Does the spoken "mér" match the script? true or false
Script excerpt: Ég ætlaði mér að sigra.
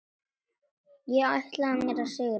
true